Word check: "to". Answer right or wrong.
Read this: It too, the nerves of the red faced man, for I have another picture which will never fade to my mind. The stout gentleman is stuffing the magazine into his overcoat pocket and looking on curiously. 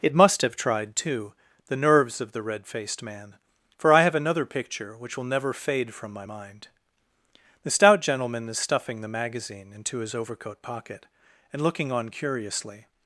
wrong